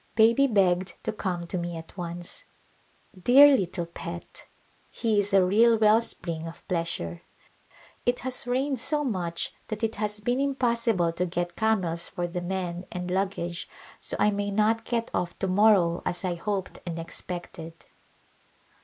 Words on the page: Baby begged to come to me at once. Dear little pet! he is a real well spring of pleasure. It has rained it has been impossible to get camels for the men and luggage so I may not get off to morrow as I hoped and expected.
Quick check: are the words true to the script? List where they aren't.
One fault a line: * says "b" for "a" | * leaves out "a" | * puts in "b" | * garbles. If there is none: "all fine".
* puts in "so much that"